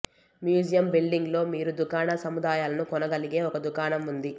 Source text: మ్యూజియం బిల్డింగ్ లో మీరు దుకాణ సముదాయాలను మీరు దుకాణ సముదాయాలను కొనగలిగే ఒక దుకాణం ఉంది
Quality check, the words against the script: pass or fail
fail